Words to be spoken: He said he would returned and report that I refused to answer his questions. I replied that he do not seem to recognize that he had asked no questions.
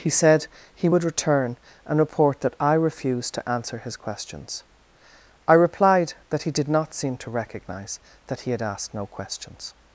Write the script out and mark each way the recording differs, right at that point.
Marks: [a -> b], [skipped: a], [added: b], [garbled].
He said he would [returned -> return] and report that I refused to answer his questions. I replied that he [do -> did] not seem to recognize that he had asked no questions.